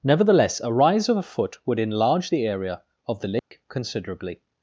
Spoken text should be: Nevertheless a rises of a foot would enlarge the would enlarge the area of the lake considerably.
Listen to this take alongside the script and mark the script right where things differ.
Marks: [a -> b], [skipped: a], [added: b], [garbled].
Nevertheless a [rises -> rise] of a foot would enlarge the [skipped: would enlarge the] area of the lake considerably.